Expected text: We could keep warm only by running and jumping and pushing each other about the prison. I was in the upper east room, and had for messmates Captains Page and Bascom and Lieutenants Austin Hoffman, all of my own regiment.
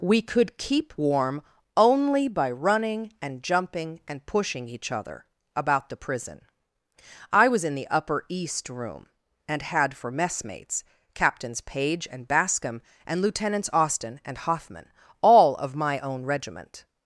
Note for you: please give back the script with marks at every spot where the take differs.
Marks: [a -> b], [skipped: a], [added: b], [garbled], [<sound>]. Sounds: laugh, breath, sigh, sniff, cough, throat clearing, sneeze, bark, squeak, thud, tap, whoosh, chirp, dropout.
We could keep warm only by running and jumping and pushing each other about the prison. I was in the upper east room, and had for messmates Captains Page and Bascom and Lieutenants Austin [added: and] Hoffman, all of my own regiment.